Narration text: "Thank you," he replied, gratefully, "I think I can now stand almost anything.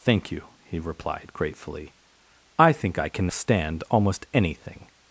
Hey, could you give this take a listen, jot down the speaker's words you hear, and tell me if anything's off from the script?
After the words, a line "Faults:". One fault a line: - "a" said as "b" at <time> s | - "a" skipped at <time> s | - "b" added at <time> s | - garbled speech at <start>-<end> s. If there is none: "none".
"Thank you," he replied, gratefully, "I think I can stand almost anything.
Faults:
- "now" skipped at 3.3 s